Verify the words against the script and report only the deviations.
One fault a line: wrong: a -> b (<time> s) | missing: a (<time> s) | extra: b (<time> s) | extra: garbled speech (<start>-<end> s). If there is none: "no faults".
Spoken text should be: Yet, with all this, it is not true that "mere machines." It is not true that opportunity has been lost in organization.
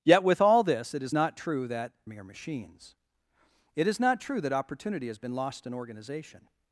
no faults